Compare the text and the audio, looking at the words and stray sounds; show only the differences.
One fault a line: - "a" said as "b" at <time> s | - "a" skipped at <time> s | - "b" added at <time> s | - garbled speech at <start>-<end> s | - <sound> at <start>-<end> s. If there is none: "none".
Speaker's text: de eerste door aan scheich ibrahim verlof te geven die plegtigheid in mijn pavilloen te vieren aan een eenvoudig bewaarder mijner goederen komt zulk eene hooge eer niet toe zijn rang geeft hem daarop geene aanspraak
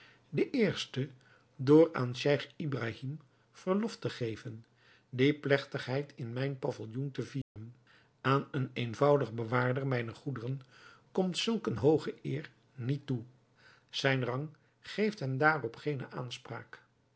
- dropout at 7.4-7.6 s